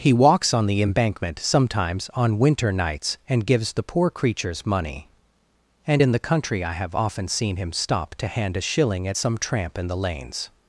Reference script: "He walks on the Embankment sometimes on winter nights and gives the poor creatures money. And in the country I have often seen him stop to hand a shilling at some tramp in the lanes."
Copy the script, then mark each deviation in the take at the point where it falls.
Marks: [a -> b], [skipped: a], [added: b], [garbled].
"He walks on the Embankment sometimes on winter nights and gives the poor creatures money. And in the country I have often seen him stop to hand a shilling at some tramp in the lanes."